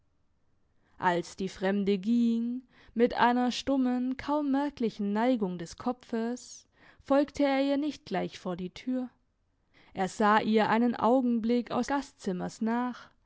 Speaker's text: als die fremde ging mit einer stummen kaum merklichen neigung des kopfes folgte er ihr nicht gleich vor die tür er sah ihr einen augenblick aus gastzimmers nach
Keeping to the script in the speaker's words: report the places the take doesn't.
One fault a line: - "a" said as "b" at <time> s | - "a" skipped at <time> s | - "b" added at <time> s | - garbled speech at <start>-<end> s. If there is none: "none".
none